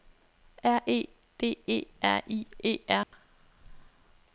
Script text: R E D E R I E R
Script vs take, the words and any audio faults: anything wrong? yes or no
yes